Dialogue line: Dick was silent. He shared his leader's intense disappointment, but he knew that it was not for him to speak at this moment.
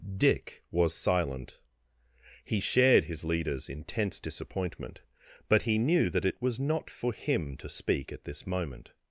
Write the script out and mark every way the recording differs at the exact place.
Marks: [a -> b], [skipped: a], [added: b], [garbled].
Dick was silent. He shared his leader's intense disappointment, but he knew that it was not for him to speak at this moment.